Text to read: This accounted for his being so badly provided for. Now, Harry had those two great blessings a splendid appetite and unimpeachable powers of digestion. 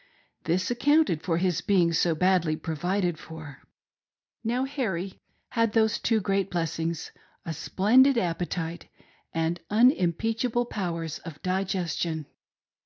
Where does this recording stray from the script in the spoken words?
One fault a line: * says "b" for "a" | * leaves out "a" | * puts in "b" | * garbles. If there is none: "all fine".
all fine